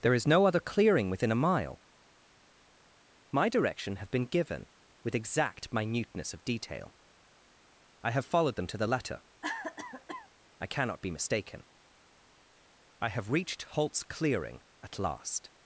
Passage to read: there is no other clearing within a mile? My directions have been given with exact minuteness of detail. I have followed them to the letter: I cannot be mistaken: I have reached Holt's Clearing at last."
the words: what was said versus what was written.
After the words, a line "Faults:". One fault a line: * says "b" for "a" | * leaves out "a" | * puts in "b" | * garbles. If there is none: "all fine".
there is no other clearing within a mile? My direction have been given with exact minuteness of detail. I have followed them to the letter: I cannot be mistaken: I have reached Holt's Clearing at last."
Faults:
* says "direction" for "directions"